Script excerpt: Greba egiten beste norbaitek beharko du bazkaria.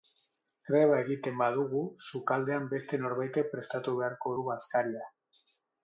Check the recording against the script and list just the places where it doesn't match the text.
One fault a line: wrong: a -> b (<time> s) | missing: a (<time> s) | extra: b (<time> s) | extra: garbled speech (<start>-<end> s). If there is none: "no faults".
extra: badugu sukaldean (1.4 s)
extra: prestatu (3.6 s)